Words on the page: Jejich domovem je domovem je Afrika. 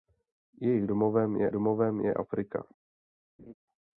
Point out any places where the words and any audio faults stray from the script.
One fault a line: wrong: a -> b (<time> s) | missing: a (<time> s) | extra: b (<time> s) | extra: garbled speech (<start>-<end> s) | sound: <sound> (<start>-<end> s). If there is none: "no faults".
sound: laugh (3.4-3.5 s)